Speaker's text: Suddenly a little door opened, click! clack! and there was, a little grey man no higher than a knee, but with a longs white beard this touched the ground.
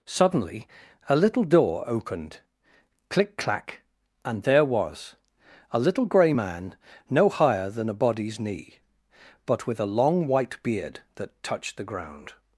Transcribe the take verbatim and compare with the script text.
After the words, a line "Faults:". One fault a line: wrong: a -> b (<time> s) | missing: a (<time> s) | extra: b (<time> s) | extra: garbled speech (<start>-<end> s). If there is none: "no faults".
Suddenly a little door opened, click! clack! and there was, a little grey man no higher than a body's knee, but with a long white beard that touched the ground.
Faults:
extra: body's (8.0 s)
wrong: longs -> long (9.9 s)
wrong: this -> that (11.2 s)